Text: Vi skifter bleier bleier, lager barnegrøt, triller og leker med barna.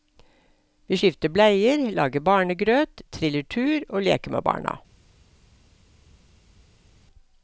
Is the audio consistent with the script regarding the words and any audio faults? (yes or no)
no